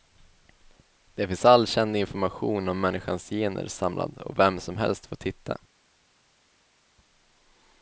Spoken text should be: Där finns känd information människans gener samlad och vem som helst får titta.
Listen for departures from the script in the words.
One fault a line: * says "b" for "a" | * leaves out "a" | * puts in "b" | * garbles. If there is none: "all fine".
* puts in "all"
* puts in "om"